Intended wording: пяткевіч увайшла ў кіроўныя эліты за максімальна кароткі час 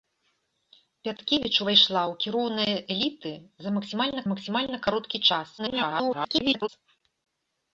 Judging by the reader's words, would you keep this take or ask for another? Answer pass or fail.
fail